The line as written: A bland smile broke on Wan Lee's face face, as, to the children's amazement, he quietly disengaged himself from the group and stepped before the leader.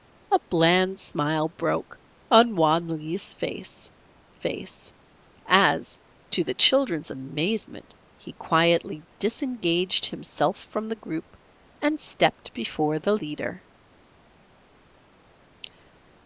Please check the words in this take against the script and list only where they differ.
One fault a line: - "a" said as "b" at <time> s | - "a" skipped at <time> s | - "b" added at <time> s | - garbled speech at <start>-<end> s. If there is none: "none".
none